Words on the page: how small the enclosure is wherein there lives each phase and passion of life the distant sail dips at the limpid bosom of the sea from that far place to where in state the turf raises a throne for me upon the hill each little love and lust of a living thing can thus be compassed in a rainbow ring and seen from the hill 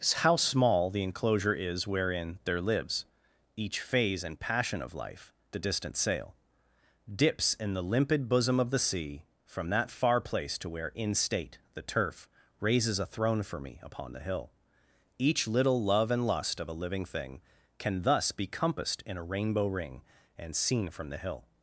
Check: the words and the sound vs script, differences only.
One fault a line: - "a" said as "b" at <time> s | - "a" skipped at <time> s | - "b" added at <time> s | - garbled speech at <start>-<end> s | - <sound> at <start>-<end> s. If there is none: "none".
- "at" said as "in" at 7.5 s